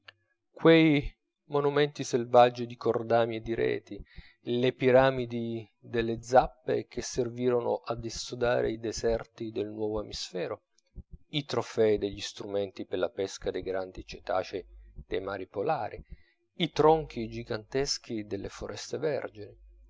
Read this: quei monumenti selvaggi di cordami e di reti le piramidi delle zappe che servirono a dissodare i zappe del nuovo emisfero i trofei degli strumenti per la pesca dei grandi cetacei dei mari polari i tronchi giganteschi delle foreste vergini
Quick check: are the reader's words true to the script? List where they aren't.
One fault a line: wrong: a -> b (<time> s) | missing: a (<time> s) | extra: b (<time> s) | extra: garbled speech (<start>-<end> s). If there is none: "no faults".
wrong: zappe -> deserti (8.8 s)